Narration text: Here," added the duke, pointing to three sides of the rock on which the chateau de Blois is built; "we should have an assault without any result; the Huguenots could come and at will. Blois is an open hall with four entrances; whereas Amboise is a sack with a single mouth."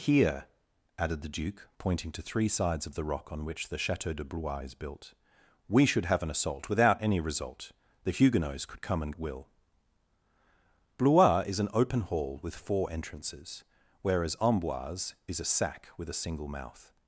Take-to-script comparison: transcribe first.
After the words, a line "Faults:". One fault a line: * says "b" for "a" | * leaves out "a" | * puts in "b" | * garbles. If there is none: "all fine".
Here," added the duke, pointing to three sides of the rock on which the chateau de Blois is built; "we should have an assault without any result; the Huguenots could come and at will. Blois is an open hall with four entrances; whereas Amboise is a sack with a single mouth."
Faults:
all fine